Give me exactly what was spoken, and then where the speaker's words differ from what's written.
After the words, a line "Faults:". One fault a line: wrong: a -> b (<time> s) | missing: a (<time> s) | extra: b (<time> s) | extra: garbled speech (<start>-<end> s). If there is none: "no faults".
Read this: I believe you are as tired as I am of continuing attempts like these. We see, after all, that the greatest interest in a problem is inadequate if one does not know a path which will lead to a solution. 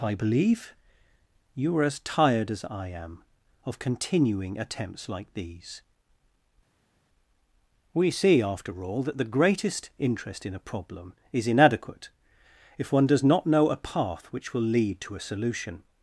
I believe you are as tired as I am of continuing attempts like these. We see, after all, that the greatest interest in a problem is inadequate if one does not know a path which will lead to a solution.
Faults:
no faults